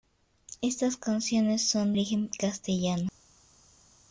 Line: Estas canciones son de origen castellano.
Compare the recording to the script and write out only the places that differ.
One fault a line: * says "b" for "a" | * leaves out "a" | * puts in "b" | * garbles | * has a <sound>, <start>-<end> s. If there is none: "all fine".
* leaves out "de"